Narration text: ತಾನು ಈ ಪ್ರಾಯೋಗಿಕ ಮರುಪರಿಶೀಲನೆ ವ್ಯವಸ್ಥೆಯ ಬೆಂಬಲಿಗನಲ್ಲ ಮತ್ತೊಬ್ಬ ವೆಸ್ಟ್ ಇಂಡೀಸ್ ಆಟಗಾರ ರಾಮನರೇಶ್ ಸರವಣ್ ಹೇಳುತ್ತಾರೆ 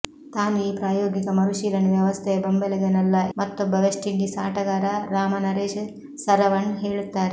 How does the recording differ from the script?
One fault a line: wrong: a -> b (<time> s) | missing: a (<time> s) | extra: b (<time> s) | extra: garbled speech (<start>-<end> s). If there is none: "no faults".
no faults